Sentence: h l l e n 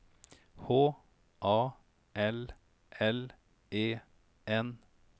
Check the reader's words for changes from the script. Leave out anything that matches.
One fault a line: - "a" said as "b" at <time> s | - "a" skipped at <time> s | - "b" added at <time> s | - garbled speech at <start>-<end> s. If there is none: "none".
- "a" added at 1.4 s